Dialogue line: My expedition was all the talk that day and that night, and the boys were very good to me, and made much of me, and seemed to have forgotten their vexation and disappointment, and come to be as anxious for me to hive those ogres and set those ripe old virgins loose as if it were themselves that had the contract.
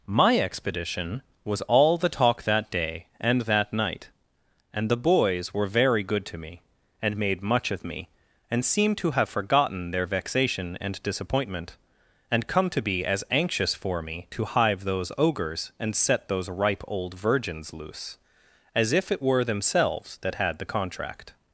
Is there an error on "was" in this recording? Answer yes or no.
no